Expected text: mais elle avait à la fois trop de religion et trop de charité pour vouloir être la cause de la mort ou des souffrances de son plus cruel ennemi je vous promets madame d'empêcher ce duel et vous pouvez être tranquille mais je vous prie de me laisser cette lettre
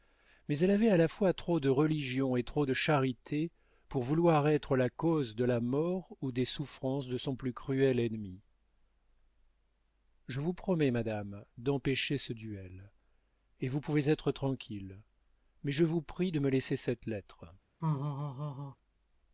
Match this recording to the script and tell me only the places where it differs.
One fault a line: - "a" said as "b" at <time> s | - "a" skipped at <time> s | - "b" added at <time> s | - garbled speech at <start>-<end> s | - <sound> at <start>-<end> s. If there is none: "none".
- laugh at 17.8-18.8 s